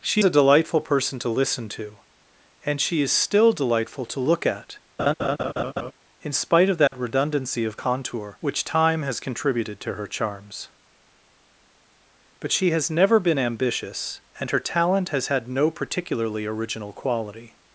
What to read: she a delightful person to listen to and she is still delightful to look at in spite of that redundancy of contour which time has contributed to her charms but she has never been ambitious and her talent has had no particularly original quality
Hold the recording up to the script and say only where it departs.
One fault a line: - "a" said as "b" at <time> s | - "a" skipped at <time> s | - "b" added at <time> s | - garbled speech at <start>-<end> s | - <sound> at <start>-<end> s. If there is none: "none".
- laugh at 5.0-5.9 s
- dropout at 6.9-6.9 s